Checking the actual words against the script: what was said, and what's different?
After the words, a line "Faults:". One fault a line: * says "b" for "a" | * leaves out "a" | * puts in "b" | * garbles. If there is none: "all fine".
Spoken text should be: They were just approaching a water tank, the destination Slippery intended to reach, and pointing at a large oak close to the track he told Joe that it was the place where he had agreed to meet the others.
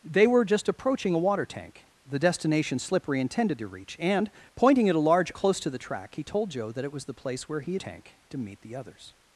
They were just approaching a water tank, the destination Slippery intended to reach, and pointing at a large close to the track he told Joe that it was the place where he had tank to meet the others.
Faults:
* leaves out "oak"
* says "tank" for "agreed"